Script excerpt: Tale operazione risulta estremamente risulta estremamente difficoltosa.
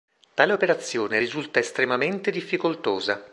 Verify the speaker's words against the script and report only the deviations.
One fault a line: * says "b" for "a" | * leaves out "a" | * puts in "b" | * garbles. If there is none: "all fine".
* leaves out "risulta estremamente"